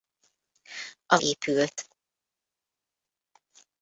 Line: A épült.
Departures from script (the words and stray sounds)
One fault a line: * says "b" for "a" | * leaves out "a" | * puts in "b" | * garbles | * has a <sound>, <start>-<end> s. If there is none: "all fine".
all fine